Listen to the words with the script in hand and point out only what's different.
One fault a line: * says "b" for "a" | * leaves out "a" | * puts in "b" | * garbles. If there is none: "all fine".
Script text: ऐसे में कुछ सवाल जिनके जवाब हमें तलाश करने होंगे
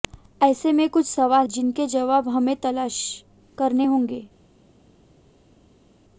all fine